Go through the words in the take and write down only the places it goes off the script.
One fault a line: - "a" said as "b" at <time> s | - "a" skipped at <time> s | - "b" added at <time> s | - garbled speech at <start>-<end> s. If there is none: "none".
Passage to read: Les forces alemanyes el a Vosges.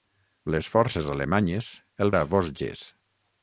none